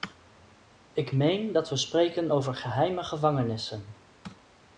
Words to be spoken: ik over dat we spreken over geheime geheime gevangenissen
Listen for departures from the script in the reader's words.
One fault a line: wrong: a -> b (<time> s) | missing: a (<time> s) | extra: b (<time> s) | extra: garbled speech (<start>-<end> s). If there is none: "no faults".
wrong: over -> meen (1.1 s)
missing: geheime (3.0 s)